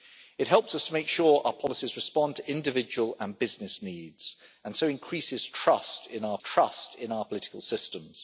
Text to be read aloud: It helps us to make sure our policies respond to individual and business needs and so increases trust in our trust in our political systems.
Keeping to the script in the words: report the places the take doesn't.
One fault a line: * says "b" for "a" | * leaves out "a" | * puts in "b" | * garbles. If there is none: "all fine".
all fine